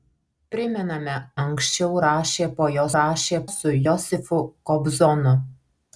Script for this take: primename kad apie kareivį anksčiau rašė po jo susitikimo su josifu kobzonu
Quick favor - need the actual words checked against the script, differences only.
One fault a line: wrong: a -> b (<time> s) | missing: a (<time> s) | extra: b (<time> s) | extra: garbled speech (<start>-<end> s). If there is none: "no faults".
missing: kad apie kareivį (1.2 s)
wrong: susitikimo -> rašė (3.0 s)